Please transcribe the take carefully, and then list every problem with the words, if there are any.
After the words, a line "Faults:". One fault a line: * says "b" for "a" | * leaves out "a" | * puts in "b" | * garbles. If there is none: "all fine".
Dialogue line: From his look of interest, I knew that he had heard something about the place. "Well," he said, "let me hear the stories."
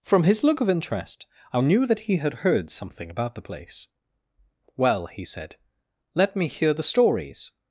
From his look of interest, I knew that he had heard something about the place. "Well," he said, "let me hear the stories."
Faults:
all fine